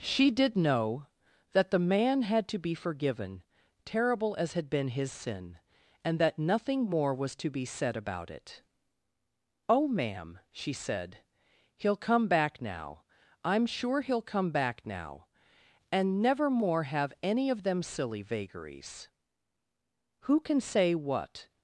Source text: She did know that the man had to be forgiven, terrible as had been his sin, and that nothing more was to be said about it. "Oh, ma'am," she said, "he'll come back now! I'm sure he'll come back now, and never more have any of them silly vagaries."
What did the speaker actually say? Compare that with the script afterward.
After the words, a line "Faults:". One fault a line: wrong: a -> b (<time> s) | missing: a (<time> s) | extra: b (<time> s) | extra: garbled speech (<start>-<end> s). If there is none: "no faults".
She did know that the man had to be forgiven, terrible as had been his sin, and that nothing more was to be said about it. "Oh, ma'am," she said, "he'll come back now! I'm sure he'll come back now, and never more have any of them silly vagaries." "Who can say what
Faults:
extra: Who can say what (20.2 s)